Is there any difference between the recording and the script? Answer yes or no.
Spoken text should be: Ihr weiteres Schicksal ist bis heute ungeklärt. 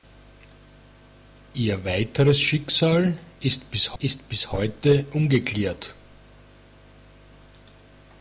yes